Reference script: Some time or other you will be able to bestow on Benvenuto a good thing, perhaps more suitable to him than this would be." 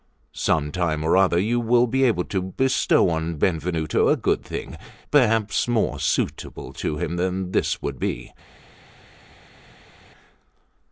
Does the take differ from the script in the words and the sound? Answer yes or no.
no